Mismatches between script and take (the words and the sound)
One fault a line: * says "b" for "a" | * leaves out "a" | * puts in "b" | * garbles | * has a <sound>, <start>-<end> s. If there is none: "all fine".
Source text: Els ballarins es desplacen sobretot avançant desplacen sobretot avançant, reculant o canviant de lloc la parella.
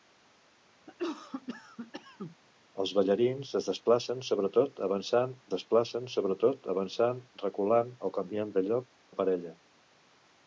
* has a cough, 0.9-2.4 s